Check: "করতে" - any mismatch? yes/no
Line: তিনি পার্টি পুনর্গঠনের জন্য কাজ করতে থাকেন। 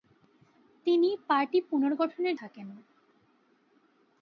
yes